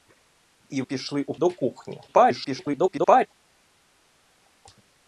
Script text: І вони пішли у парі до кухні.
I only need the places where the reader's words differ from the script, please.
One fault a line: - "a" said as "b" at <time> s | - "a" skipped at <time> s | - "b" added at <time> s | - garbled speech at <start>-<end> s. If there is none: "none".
- "вони" skipped at 0.8 s
- "парі" skipped at 1.3 s
- garbled speech at 2.1-3.3 s